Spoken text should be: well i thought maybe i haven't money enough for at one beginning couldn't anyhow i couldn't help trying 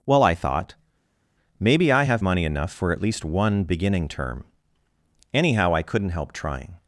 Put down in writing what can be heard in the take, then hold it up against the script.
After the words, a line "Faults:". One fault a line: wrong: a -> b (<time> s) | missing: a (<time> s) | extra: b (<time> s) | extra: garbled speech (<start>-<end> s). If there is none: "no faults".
well i thought maybe i have money enough for at least one beginning term anyhow i couldn't help trying
Faults:
wrong: haven't -> have (2.0 s)
extra: least (3.0 s)
wrong: couldn't -> term (4.1 s)